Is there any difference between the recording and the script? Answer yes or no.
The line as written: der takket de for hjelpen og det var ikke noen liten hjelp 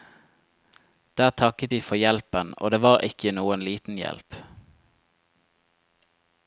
no